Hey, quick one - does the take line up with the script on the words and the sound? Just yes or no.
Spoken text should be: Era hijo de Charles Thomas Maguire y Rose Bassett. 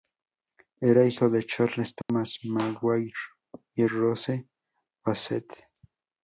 no